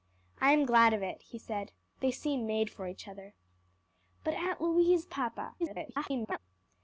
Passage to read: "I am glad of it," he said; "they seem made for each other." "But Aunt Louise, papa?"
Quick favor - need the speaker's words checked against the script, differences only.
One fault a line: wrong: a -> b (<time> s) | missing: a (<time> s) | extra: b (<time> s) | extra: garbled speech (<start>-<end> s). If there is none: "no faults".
extra: garbled speech (5.6-6.4 s)